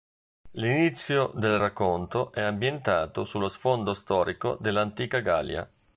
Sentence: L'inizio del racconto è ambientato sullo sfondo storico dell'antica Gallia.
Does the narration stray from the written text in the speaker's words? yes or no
no